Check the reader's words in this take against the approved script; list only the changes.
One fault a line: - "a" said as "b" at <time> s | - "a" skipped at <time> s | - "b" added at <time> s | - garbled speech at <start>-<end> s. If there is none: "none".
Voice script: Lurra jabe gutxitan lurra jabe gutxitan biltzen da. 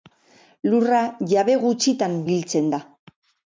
- "lurra jabe gutxitan" skipped at 2.2 s